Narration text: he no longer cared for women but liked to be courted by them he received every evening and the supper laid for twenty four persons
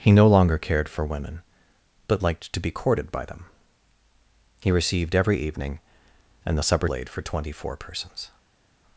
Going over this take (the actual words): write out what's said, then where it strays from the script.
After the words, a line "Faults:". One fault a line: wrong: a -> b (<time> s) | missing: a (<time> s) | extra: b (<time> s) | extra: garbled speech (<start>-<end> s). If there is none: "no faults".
he no longer cared for women but liked to be courted by them he received every evening and the supper laid for twenty four persons
Faults:
no faults